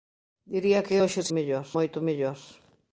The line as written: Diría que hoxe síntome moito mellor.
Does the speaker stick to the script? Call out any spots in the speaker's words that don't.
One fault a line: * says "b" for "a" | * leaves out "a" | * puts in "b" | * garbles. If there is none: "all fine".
* says "mellor" for "síntome"